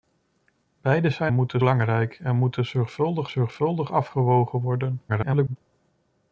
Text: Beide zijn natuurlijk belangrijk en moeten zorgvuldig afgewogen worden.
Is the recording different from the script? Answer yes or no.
yes